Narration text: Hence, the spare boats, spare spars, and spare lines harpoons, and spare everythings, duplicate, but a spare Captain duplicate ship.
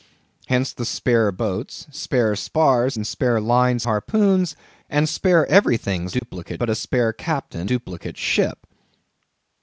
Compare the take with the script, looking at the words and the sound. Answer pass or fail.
fail